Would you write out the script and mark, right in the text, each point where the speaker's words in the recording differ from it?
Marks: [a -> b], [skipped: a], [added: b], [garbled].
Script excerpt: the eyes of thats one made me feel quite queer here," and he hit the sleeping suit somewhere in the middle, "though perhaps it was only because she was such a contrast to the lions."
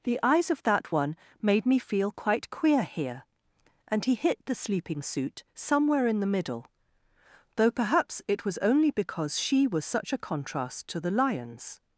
the eyes of [thats -> that] one made me feel quite queer here," and he hit the sleeping suit somewhere in the middle, "though perhaps it was only because she was such a contrast to the lions."